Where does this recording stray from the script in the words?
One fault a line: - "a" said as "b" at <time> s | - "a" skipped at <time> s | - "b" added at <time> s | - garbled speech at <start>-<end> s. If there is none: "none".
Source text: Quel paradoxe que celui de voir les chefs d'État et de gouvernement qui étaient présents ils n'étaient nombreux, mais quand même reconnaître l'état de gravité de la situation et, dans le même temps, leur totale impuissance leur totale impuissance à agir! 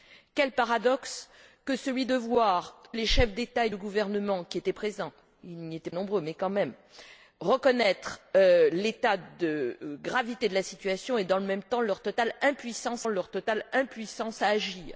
none